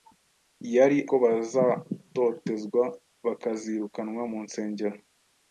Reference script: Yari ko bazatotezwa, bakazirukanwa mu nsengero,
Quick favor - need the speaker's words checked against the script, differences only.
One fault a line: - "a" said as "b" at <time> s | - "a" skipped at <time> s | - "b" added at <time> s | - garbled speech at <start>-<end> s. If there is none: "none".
none